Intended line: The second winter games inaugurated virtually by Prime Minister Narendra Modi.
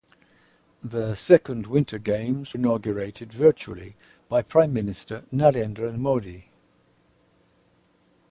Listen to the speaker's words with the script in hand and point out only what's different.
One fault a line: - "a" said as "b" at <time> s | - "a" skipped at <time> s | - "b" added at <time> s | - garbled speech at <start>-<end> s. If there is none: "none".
none